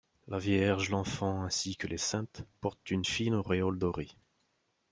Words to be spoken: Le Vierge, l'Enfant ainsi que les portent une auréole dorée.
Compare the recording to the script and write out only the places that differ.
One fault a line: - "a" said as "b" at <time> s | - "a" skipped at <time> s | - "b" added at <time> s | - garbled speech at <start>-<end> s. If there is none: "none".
- "Le" said as "La" at 0.3 s
- "saintes" added at 2.0 s
- "fine" added at 3.0 s